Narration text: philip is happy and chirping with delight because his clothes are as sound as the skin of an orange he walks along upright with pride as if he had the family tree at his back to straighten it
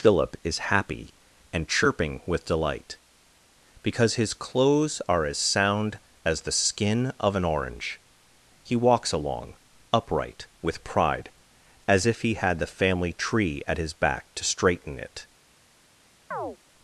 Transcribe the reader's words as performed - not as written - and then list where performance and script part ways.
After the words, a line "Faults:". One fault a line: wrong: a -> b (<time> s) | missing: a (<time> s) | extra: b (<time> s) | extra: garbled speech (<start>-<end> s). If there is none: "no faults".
philip is happy and chirping with delight because his clothes are as sound as the skin of an orange he walks along upright with pride as if he had the family tree at his back to straighten it
Faults:
no faults